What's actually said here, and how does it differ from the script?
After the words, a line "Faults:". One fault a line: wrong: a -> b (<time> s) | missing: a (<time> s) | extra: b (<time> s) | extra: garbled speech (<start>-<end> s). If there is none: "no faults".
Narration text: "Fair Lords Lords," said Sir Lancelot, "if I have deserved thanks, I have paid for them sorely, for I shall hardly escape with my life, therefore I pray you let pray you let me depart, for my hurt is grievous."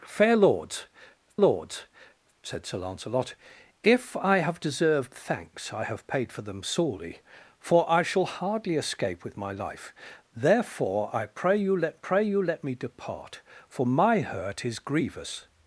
"Fair Lords Lords," said Sir Lancelot, "if I have deserved thanks, I have paid for them sorely, for I shall hardly escape with my life, therefore I pray you let pray you let me depart, for my hurt is grievous."
Faults:
no faults